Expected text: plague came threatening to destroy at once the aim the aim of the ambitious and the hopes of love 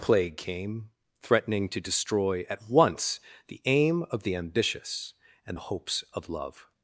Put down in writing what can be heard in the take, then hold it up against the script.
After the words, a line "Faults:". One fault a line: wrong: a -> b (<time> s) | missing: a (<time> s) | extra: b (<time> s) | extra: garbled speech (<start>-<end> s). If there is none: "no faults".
plague came threatening to destroy at once the aim of the ambitious and the hopes of love
Faults:
missing: the aim (4.0 s)